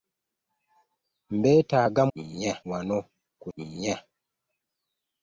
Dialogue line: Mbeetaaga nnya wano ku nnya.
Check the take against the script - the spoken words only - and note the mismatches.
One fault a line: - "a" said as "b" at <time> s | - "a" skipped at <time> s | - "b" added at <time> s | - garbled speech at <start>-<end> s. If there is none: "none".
none